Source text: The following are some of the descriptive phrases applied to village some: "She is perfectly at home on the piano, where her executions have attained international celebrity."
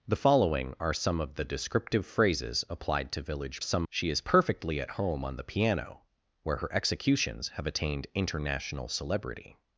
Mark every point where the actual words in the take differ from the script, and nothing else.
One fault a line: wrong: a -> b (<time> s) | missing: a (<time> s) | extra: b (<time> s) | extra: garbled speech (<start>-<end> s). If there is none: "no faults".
no faults